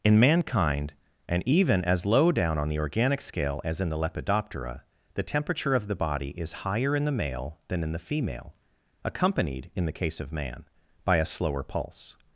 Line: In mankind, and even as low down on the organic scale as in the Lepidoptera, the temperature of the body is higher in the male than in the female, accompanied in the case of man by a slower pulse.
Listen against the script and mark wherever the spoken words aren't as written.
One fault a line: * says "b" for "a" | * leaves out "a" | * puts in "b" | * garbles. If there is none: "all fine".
all fine